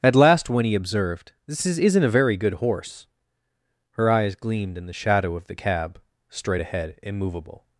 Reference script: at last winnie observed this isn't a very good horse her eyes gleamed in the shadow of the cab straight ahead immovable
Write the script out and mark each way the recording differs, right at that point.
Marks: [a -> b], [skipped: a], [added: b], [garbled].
at last winnie observed this [added: is] isn't a very good horse her eyes gleamed in the shadow of the cab straight ahead immovable